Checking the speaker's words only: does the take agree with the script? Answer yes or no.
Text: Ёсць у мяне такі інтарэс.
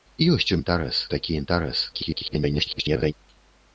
no